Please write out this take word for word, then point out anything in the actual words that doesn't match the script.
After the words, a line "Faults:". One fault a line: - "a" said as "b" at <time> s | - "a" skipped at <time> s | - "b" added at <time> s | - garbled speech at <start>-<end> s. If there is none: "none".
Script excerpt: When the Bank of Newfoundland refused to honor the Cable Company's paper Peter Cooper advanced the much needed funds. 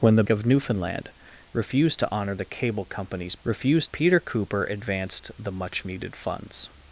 When the Of Newfoundland refused to honor the Cable Company's refused Peter Cooper advanced the much needed funds.
Faults:
- "Bank" skipped at 0.2 s
- "paper" said as "refused" at 3.4 s